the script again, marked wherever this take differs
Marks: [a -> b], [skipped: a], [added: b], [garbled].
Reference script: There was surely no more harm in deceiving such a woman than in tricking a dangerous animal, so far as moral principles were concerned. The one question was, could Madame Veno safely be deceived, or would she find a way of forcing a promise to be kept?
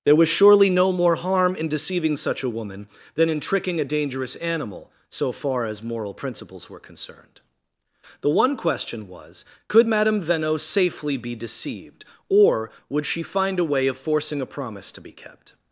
There was surely no more harm in deceiving such a woman than in tricking a dangerous animal, so far as moral principles were concerned. The one question was, could Madame Veno safely be deceived, or would she find a way of forcing a promise to be kept?